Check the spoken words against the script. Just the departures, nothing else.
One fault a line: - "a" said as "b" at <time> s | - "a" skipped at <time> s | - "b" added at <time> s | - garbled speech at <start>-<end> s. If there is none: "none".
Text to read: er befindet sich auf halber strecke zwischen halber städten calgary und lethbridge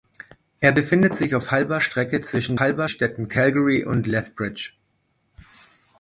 none